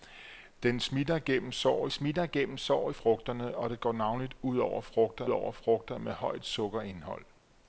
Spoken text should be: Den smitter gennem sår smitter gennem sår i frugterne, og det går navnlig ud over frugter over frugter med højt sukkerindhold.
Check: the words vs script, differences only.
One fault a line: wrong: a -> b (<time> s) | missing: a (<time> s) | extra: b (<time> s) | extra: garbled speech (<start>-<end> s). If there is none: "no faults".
no faults